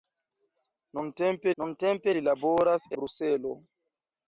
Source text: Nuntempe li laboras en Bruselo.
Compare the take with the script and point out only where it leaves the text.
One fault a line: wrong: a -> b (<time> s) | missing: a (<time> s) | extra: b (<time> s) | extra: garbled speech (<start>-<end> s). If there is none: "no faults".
extra: nuntempe (1.6 s)
missing: en (2.9 s)